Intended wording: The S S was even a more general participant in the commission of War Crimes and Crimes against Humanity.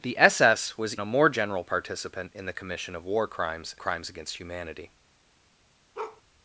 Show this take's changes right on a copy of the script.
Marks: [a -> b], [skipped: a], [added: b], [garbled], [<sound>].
The S S was [skipped: even] a more general participant in the commission of War Crimes [skipped: and] Crimes against Humanity. [bark]